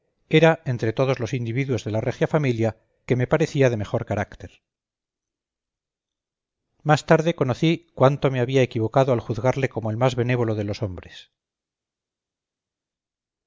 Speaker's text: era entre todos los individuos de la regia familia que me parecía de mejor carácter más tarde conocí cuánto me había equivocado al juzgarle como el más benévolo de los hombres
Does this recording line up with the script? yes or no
yes